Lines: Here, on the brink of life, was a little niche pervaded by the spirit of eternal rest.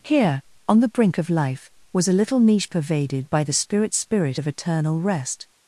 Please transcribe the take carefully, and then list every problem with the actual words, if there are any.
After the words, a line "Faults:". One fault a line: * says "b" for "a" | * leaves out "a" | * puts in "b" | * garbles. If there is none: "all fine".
Here, on the brink of life, was a little niche pervaded by the spirit spirit of eternal rest.
Faults:
* puts in "spirit"